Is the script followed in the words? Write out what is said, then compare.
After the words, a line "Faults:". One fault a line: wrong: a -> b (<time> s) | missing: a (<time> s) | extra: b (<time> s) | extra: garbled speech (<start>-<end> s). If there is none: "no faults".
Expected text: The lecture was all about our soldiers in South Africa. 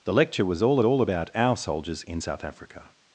The lecture was all all about our soldiers in South Africa.
Faults:
extra: all (0.8 s)